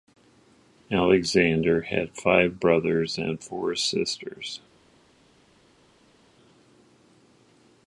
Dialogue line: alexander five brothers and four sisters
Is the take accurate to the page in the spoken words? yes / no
no